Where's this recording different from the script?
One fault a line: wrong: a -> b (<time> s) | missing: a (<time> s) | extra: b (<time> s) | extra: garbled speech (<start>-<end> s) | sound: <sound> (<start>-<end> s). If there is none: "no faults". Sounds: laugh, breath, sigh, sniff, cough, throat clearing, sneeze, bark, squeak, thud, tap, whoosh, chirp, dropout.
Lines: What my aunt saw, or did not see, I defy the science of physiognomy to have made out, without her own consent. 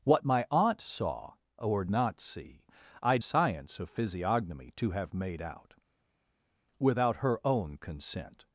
missing: did (1.9 s)
missing: defy the (3.2 s)